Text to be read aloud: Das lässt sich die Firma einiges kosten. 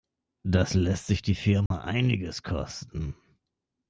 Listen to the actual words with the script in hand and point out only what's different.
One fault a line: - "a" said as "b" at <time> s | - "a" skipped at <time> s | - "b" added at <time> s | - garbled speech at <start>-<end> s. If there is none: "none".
none